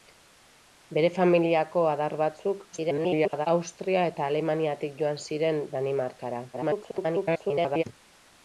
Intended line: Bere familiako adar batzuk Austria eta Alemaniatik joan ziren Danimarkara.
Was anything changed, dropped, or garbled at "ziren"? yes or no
no